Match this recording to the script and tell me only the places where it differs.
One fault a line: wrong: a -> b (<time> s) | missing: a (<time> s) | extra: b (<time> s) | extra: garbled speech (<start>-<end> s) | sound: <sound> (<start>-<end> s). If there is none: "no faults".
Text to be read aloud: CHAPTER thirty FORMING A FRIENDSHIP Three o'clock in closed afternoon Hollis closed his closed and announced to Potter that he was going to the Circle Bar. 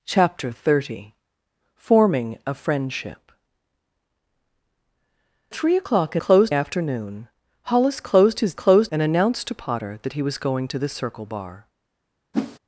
sound: whoosh (12.3-12.6 s)